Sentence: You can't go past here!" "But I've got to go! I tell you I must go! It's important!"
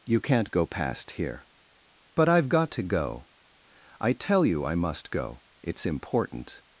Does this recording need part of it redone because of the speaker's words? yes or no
no